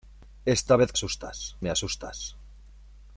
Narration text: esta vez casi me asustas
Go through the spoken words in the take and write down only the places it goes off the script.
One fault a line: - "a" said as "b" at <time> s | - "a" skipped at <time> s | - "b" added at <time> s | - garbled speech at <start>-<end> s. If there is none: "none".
- "casi" said as "asustas" at 0.9 s